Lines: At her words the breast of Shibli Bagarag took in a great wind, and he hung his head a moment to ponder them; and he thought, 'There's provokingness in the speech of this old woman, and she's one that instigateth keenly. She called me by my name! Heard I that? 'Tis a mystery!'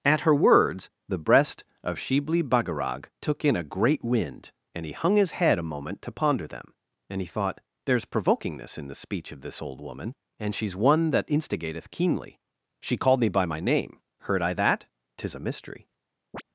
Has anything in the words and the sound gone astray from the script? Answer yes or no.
yes